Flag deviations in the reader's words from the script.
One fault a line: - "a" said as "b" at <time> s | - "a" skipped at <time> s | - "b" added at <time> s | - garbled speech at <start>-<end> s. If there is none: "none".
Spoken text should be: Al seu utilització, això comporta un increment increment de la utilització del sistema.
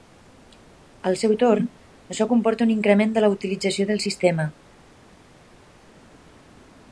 - "utilització" said as "torn" at 1.4 s
- "increment" skipped at 3.1 s